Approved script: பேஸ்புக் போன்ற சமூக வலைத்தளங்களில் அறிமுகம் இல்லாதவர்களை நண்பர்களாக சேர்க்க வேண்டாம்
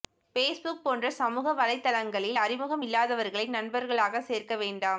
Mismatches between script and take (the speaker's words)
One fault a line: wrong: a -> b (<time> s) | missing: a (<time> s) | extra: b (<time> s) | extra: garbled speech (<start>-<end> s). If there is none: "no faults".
no faults